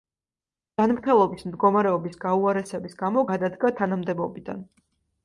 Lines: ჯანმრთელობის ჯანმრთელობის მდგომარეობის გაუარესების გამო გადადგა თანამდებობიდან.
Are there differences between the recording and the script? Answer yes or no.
yes